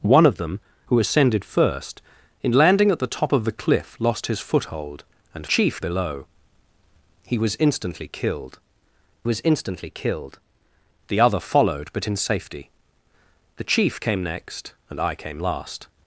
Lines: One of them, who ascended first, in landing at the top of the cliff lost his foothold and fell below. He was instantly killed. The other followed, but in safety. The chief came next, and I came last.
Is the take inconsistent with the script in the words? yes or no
yes